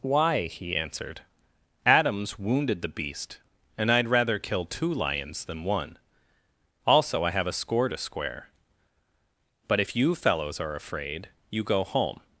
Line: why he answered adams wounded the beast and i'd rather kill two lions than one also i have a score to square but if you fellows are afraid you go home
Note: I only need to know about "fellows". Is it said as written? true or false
true